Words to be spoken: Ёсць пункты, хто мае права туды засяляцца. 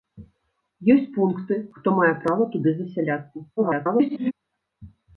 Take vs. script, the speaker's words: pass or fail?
fail